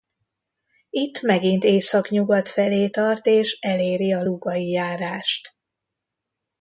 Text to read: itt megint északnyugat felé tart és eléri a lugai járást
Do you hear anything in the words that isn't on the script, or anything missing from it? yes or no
no